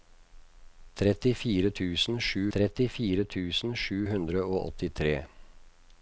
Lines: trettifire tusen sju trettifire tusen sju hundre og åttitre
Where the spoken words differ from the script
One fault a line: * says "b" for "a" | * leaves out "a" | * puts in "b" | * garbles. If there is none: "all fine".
all fine